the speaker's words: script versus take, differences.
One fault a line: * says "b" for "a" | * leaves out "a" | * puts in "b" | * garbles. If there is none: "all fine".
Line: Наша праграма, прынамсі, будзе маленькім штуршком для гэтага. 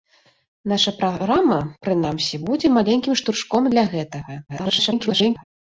* garbles